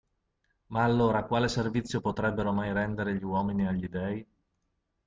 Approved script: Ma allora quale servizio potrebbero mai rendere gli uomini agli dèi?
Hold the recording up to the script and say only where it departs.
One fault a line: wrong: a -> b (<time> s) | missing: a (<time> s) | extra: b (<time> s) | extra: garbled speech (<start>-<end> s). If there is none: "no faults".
no faults